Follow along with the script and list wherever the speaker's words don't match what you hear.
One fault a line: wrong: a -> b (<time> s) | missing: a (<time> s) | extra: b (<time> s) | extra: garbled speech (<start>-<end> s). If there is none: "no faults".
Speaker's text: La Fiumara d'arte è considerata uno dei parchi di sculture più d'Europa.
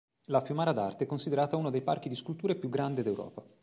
extra: grande (2.7 s)